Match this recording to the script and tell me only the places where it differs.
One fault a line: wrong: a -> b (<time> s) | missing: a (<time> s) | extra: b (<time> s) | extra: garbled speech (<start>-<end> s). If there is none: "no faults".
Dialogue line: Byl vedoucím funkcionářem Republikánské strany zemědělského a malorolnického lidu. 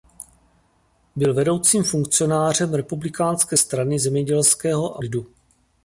missing: malorolnického (5.0 s)